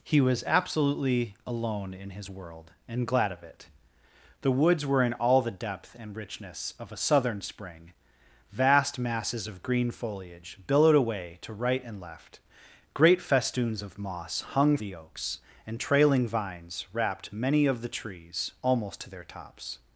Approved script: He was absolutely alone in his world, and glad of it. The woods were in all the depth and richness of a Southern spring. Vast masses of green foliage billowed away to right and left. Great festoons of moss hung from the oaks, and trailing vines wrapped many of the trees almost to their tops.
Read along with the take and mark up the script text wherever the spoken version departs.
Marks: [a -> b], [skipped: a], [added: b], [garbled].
He was absolutely alone in his world, and glad of it. The woods were in all the depth and richness of a Southern spring. Vast masses of green foliage billowed away to right and left. Great festoons of moss hung [skipped: from] the oaks, and trailing vines wrapped many of the trees almost to their tops.